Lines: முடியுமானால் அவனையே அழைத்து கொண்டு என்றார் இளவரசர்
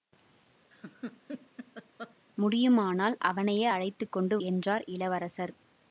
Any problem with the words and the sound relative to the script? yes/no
yes